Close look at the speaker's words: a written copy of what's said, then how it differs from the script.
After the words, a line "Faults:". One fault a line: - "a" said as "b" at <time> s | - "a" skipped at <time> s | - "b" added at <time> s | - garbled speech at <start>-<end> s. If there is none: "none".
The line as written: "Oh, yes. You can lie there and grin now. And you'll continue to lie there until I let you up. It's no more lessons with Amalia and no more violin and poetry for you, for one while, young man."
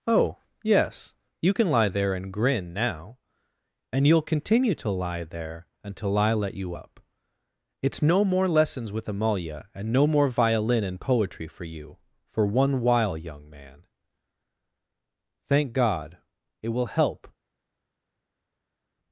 "Oh, yes. You can lie there and grin now. And you'll continue to lie there until I let you up. It's no more lessons with Amalia and no more violin and poetry for you, for one while, young man." "Thank God. It will help
Faults:
- "Thank God It will help" added at 15.5 s